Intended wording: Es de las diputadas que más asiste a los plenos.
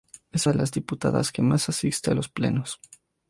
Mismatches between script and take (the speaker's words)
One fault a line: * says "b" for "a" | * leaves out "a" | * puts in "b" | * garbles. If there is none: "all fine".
all fine